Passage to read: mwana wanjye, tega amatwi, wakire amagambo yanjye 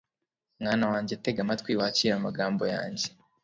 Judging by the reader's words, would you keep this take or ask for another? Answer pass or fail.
pass